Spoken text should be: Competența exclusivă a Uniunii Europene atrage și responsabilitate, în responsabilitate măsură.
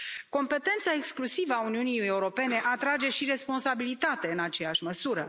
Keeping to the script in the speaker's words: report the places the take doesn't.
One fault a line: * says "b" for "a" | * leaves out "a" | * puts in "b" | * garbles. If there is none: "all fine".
* says "aceeași" for "responsabilitate"